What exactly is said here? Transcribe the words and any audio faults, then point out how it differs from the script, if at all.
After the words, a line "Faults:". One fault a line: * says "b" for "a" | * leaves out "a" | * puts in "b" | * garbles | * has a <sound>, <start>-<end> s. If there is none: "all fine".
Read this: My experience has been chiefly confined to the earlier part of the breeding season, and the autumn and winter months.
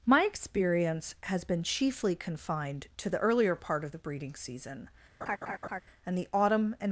My experience has been chiefly confined to the earlier part of the breeding season, and the autumn and.
Faults:
* has a laugh, 5.2-5.8 s
* leaves out "winter months"